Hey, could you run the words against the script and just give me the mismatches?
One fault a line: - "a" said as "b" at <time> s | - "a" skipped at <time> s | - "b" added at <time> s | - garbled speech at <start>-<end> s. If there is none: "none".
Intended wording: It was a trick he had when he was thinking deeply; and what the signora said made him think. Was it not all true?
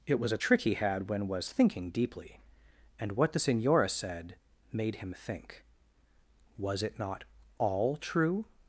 - "he" skipped at 1.3 s